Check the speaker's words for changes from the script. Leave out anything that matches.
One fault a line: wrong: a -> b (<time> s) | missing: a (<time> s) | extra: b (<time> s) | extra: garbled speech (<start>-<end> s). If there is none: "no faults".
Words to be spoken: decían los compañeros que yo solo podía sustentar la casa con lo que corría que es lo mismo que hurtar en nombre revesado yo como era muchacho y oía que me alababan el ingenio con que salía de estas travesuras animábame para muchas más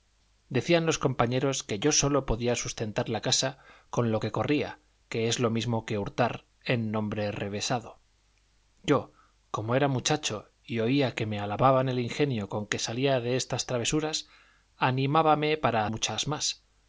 no faults